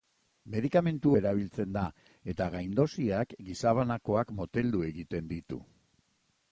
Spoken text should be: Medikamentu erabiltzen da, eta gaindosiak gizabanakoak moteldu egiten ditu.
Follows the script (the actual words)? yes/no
yes